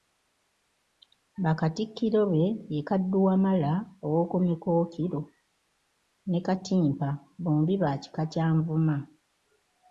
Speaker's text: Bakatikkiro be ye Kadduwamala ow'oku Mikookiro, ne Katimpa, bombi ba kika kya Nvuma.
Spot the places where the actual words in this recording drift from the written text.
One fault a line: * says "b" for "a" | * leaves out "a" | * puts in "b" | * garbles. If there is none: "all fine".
all fine